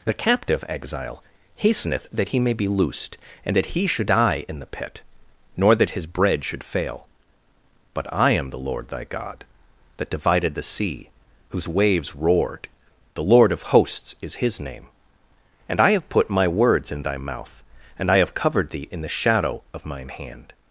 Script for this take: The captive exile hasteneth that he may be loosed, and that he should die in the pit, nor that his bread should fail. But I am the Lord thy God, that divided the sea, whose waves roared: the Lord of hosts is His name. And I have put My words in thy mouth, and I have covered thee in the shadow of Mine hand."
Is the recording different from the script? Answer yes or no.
no